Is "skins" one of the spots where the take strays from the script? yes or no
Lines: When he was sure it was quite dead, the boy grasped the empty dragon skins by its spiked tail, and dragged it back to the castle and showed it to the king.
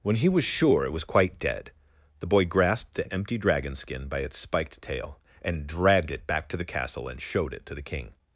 yes